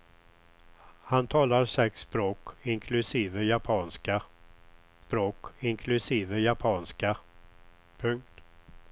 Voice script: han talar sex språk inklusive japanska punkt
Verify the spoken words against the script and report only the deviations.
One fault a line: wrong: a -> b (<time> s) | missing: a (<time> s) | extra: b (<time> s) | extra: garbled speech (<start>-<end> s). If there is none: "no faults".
extra: språk inklusive japanska (5.0 s)